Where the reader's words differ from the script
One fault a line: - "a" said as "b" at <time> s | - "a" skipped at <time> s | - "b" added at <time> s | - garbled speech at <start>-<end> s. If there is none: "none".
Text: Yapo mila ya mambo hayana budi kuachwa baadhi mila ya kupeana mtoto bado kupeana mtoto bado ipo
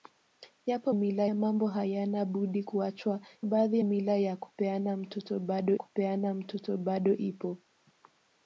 none